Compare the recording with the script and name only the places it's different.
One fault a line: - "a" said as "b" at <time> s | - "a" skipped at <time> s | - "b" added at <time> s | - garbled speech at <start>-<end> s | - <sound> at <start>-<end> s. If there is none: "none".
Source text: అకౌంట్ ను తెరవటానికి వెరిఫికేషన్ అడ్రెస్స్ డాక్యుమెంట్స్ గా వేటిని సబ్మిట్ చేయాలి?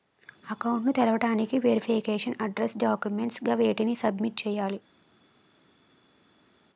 none